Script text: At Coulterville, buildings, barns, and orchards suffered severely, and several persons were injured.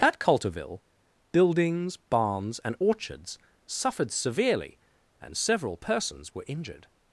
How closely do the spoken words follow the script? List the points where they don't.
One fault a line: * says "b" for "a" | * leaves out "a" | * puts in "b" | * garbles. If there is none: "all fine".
all fine